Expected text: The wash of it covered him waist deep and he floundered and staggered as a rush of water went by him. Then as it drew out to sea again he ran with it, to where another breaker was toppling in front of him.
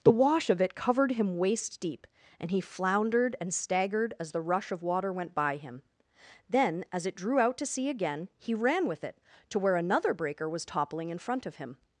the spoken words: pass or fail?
fail